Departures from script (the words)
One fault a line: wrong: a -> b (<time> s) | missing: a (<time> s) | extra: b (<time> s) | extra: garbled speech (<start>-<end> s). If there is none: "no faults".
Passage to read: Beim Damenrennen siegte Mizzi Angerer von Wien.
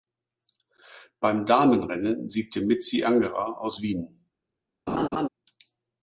wrong: von -> aus (3.6 s)